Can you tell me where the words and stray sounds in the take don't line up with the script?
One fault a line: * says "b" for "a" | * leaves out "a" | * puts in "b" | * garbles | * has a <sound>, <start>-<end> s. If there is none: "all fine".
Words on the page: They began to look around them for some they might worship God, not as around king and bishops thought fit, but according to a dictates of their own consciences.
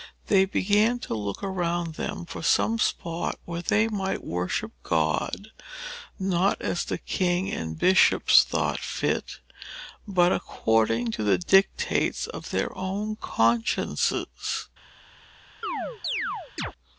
* puts in "spot where"
* says "the" for "around"
* says "the" for "a"
* has a chirp, 15.6-16.7 s